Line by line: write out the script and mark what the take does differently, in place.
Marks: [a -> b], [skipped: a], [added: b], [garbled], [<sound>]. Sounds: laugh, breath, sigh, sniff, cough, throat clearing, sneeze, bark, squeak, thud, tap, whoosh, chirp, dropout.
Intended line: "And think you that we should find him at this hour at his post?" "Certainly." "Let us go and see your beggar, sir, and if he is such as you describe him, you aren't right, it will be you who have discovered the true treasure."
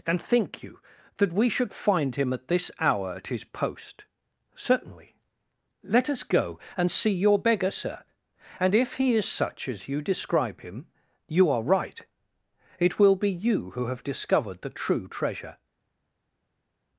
"And think you that we should find him at this hour at his post?" "Certainly." "Let us go and see your beggar, sir, and if he is such as you describe him, you [aren't -> are] right, it will be you who have discovered the true treasure."